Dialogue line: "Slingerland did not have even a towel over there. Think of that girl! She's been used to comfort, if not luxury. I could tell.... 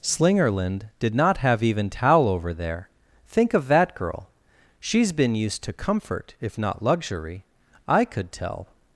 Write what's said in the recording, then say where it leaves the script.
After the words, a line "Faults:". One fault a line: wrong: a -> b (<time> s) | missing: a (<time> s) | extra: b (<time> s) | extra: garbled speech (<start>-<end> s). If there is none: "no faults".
"Slingerland did not have even towel over there. Think of that girl! She's been used to comfort, if not luxury. I could tell....
Faults:
missing: a (1.9 s)